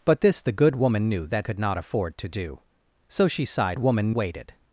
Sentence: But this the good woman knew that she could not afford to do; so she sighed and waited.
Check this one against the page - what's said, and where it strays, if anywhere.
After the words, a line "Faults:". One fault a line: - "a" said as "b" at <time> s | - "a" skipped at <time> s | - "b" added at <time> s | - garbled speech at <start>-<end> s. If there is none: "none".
But this the good woman knew that could not afford to do; so she sighed woman waited.
Faults:
- "she" skipped at 1.5 s
- "and" said as "woman" at 3.8 s